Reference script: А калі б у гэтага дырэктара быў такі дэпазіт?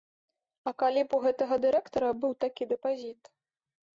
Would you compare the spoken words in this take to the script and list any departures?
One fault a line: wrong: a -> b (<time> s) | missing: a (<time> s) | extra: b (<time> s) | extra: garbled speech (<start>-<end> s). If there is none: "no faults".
no faults